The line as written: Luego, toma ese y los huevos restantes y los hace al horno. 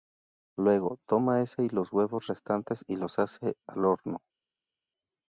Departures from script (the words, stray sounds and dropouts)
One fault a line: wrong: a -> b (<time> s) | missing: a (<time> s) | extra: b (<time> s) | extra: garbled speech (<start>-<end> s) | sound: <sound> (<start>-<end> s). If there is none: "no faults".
no faults